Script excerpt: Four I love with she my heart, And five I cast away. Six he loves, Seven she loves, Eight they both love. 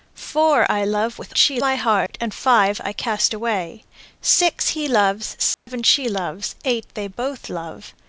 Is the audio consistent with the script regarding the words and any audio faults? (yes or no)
no